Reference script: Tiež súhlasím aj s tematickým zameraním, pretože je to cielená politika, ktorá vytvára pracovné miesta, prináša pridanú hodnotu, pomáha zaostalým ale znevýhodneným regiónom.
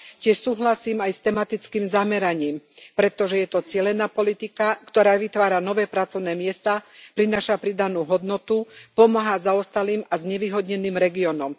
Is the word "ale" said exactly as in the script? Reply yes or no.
no